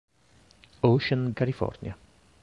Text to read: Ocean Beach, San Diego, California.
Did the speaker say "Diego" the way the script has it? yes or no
no